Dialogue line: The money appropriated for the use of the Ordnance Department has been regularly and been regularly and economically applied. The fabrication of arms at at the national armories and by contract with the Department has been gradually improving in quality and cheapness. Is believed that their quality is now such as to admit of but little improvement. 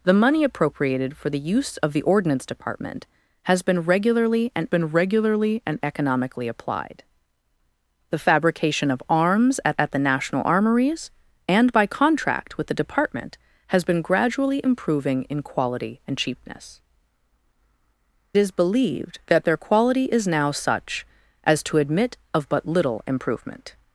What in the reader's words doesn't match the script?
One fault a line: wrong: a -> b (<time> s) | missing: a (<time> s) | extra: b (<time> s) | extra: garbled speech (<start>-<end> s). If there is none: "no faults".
no faults